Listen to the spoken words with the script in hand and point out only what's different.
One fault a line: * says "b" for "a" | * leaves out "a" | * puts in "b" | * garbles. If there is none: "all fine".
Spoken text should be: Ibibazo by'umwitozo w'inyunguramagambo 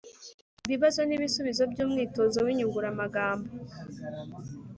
* puts in "n'ibisubizo"